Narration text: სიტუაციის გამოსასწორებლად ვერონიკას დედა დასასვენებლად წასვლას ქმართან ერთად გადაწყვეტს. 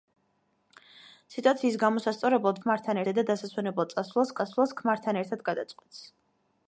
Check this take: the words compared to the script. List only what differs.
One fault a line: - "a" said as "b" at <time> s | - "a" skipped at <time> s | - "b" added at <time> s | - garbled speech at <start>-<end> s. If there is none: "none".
- "ვერონიკას" said as "ქმართან" at 2.6 s
- "წასვლას" added at 4.4 s